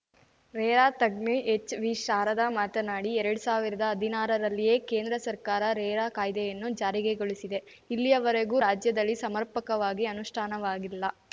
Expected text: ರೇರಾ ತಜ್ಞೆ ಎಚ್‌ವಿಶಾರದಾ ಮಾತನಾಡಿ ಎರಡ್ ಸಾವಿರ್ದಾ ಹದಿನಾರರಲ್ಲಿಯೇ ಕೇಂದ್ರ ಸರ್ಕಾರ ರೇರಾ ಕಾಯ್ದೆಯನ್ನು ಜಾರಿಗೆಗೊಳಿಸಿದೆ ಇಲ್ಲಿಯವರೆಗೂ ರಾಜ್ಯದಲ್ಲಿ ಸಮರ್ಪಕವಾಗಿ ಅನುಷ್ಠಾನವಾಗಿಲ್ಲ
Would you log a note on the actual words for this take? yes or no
no